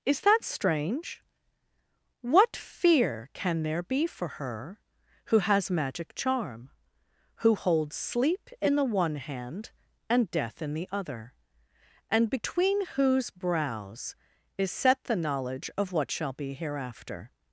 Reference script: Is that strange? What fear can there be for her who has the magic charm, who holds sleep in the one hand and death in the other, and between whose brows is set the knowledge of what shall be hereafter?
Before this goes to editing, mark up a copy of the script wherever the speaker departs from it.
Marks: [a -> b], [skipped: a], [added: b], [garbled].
Is that strange? What fear can there be for her who has [skipped: the] magic charm, who holds sleep in the one hand and death in the other, and between whose brows is set the knowledge of what shall be hereafter?